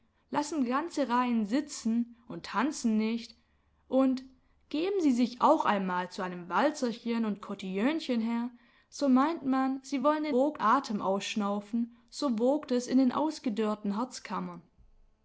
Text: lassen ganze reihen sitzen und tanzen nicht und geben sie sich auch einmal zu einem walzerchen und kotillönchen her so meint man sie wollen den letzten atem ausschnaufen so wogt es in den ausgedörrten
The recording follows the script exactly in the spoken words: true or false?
false